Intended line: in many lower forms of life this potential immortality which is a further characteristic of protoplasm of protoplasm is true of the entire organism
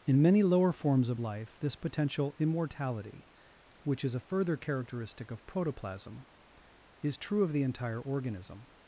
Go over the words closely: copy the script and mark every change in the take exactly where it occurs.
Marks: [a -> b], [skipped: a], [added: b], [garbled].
in many lower forms of life this potential immortality which is a further characteristic of protoplasm [skipped: of protoplasm] is true of the entire organism